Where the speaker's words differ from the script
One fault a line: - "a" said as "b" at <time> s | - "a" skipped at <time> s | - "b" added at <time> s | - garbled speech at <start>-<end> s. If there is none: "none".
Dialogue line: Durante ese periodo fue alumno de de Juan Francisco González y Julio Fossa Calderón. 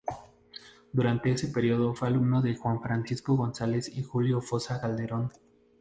- "de" skipped at 2.5 s